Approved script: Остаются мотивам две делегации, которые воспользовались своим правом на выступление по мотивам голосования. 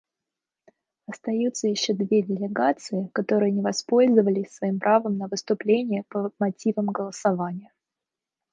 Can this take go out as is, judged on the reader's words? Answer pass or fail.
fail